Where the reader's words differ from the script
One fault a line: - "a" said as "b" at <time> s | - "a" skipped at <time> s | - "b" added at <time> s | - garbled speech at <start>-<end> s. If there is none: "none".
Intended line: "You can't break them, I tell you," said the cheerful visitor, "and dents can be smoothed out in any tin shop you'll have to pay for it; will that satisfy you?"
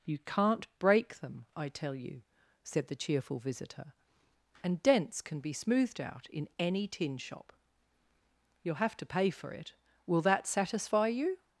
none